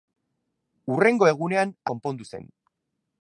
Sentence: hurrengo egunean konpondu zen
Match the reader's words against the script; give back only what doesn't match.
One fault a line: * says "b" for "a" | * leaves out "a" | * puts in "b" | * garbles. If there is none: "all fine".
all fine